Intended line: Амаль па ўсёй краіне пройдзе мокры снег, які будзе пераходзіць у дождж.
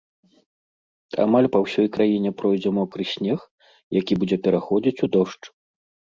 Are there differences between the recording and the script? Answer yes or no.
no